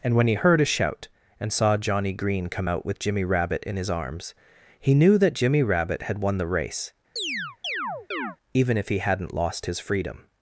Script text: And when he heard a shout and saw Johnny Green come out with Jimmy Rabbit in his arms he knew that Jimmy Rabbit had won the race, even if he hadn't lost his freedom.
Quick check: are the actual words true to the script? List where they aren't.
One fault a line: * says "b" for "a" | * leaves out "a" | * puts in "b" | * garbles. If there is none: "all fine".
all fine